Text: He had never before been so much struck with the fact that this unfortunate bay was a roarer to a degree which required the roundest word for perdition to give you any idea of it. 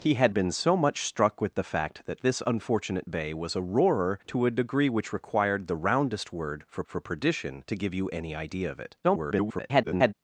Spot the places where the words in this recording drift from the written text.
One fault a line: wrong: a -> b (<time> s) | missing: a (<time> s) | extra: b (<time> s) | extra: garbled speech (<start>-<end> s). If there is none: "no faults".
missing: never before (0.3 s)
extra: for (6.8 s)
extra: garbled speech (9.0-10.1 s)